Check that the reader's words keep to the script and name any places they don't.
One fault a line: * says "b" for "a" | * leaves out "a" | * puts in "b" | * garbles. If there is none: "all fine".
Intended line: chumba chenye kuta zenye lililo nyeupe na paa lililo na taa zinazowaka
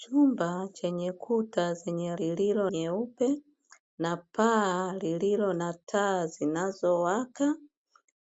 all fine